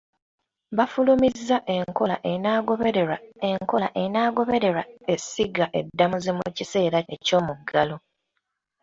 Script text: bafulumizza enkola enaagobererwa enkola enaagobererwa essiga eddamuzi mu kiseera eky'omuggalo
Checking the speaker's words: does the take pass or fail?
pass